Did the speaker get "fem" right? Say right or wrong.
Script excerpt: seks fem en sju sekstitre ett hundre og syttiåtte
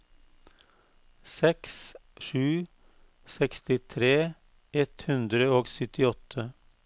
wrong